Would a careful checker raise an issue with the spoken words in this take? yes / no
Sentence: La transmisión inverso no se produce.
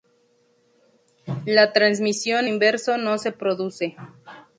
no